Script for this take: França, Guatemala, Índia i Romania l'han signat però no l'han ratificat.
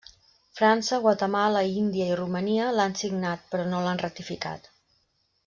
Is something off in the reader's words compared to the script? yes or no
no